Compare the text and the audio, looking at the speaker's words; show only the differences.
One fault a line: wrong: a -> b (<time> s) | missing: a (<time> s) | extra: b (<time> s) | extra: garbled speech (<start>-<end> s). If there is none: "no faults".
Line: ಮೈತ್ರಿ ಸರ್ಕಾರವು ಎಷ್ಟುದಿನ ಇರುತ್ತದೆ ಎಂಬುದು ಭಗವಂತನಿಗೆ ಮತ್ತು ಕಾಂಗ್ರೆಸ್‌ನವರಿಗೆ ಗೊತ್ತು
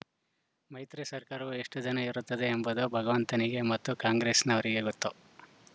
no faults